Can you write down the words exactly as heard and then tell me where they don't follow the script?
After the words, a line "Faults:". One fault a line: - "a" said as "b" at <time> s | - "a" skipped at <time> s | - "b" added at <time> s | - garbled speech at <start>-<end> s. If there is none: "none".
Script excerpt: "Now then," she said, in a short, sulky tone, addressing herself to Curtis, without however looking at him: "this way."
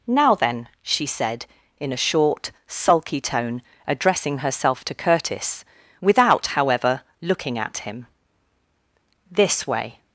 "Now then," she said, in a short, sulky tone, addressing herself to Curtis, without however looking at him: "this way."
Faults:
none